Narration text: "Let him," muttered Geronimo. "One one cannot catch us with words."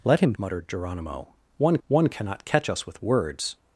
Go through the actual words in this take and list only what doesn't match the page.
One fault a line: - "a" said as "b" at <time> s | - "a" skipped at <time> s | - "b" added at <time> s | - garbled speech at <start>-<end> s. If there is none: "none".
none